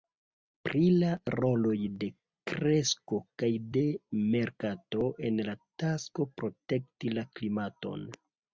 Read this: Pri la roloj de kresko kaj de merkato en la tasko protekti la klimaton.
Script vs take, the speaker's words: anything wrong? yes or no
no